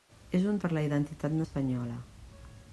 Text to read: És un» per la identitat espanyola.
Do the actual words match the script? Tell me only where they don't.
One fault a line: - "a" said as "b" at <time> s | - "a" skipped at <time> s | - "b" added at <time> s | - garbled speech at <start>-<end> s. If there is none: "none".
none